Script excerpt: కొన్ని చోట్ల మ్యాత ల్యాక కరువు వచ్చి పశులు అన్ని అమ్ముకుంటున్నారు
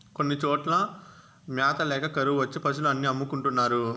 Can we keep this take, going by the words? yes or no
yes